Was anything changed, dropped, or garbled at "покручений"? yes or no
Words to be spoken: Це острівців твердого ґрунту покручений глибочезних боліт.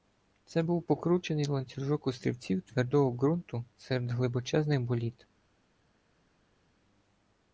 yes